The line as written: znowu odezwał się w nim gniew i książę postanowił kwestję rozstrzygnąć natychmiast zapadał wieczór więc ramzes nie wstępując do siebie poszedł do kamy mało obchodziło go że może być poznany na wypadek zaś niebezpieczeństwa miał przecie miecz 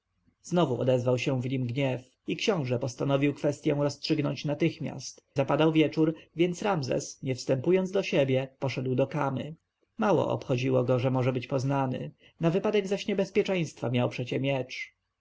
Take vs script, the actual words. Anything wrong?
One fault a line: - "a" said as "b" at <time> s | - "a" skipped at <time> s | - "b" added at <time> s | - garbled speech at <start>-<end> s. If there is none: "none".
none